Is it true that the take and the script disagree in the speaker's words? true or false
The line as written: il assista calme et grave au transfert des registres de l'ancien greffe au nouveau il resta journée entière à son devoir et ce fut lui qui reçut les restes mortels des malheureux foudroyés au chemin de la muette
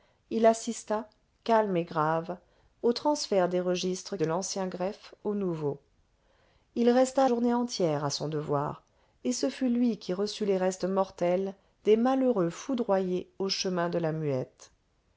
false